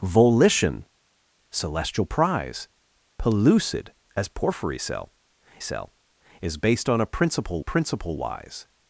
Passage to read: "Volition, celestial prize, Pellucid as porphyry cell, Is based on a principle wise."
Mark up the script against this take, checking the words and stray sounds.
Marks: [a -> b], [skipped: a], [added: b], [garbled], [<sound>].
"Volition, celestial prize, Pellucid as porphyry cell, [added: cell] Is based on a principle [added: principle] wise."